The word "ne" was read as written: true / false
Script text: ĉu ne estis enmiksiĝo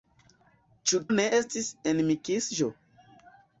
true